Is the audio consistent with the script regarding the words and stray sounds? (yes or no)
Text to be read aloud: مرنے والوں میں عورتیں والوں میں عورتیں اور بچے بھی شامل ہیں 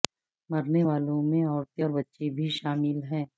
no